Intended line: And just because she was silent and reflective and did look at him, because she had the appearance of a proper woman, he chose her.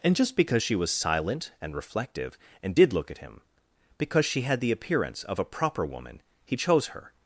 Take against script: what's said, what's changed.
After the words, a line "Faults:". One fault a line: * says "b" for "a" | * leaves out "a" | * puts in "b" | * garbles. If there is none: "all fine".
And just because she was silent and reflective and did look at him, because she had the appearance of a proper woman, he chose her.
Faults:
all fine